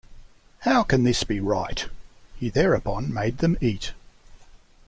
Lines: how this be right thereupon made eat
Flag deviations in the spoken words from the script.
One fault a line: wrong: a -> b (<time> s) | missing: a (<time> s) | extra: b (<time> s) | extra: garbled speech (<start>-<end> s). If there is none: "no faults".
extra: can (0.8 s)
extra: he (2.4 s)
extra: them (3.4 s)